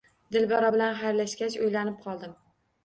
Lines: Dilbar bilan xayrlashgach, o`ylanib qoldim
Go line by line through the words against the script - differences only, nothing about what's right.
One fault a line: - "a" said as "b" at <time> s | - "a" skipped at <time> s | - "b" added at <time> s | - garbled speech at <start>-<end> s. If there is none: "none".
none